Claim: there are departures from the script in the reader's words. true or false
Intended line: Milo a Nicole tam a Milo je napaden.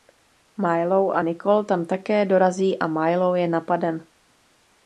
true